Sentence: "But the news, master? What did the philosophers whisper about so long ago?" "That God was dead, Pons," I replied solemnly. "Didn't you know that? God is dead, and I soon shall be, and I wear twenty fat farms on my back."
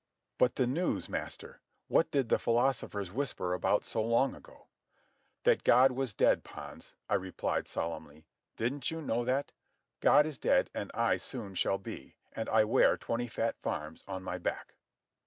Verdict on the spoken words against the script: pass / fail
pass